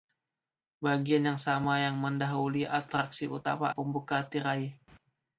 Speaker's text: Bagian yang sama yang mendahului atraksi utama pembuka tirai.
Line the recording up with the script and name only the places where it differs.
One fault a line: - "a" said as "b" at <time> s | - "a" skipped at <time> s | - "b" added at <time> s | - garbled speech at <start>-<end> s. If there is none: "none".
none